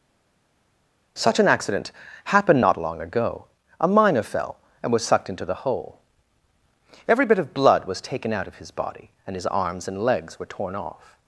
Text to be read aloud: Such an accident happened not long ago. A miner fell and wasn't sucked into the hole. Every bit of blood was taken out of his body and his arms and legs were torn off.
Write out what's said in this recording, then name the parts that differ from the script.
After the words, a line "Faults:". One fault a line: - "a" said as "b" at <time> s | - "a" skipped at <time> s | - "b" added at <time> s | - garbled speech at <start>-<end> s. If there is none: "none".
Such an accident happened not long ago. A miner fell and was sucked into the hole. Every bit of blood was taken out of his body and his arms and legs were torn off.
Faults:
- "wasn't" said as "was" at 4.9 s